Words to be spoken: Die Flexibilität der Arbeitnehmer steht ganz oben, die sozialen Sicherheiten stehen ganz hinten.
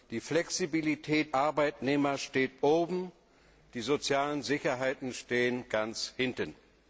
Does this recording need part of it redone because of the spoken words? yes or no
yes